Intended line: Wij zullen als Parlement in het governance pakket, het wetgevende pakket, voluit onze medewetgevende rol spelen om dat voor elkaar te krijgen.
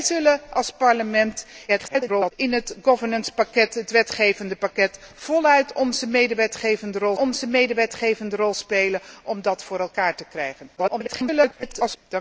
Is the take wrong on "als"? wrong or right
right